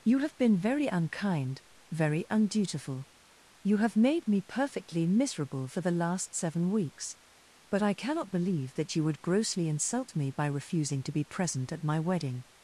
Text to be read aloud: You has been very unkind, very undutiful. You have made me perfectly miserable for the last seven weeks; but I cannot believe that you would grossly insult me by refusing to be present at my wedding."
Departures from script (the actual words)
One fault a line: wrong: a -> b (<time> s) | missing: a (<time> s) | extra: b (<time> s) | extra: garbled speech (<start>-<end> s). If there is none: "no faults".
wrong: has -> have (0.2 s)